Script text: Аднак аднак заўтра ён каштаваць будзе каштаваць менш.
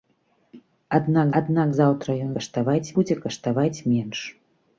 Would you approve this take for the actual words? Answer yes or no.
yes